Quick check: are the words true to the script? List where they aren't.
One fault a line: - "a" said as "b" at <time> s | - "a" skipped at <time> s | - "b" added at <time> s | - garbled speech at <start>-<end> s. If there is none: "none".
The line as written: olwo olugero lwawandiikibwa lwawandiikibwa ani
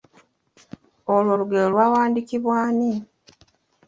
- "lwawandiikibwa" skipped at 2.5 s